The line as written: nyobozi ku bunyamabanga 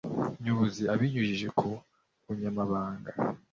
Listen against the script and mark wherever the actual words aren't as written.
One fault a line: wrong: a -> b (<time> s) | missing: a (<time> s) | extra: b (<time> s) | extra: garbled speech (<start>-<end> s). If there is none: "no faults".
extra: abinyujije (0.9 s)